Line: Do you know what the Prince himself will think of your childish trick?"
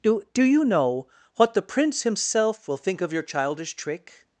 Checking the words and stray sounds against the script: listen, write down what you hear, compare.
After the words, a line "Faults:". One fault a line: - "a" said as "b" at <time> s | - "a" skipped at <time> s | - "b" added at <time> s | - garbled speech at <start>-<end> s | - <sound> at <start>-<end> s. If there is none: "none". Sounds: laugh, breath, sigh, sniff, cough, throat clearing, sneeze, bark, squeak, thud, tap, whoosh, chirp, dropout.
Do do you know what the Prince himself will think of your childish trick?"
Faults:
- "do" added at 0.3 s